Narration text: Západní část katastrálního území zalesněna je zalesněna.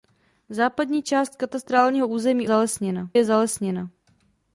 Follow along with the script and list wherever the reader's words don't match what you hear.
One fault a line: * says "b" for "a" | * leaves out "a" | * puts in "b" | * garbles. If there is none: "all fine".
all fine